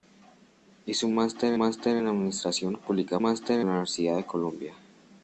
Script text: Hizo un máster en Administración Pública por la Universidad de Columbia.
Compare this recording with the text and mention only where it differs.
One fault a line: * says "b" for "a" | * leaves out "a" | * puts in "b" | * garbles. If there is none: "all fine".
* puts in "máster"
* says "máster" for "por"